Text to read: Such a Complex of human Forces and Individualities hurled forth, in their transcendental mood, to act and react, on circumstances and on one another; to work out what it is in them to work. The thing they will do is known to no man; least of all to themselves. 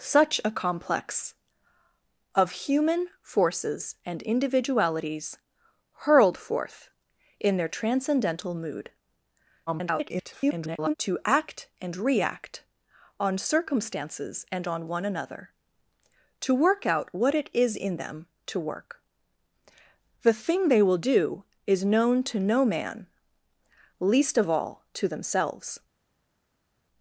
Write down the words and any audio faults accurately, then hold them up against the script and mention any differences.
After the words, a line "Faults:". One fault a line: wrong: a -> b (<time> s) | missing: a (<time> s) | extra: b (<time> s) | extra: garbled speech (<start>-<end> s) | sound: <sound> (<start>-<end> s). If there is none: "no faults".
Such a Complex of human Forces and Individualities hurled forth, in their transcendental mood, [garbled] to act and react, on circumstances and on one another; to work out what it is in them to work. The thing they will do is known to no man; least of all to themselves.
Faults:
extra: garbled speech (9.7-10.9 s)